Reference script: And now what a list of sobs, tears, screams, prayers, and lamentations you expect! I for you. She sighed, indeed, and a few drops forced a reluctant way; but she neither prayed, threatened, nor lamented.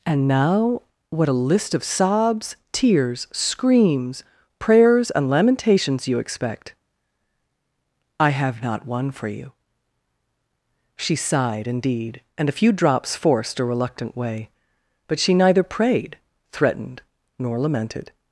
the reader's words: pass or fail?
fail